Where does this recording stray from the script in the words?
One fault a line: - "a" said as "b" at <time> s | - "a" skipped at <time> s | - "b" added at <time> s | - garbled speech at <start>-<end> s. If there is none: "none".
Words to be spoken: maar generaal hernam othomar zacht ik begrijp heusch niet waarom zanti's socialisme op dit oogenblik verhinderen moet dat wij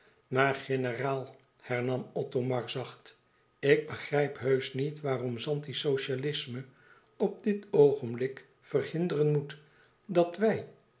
none